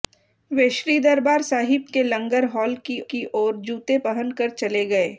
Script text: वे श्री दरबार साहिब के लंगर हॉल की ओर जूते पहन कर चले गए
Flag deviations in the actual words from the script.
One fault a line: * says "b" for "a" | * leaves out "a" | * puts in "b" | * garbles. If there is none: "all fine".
* puts in "की"